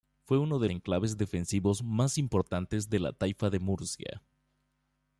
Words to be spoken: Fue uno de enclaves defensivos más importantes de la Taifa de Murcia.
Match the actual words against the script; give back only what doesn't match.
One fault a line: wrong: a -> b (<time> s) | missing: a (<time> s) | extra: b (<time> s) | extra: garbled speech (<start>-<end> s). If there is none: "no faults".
no faults